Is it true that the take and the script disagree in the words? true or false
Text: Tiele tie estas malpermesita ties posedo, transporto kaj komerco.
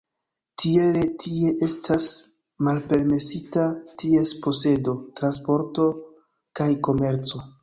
false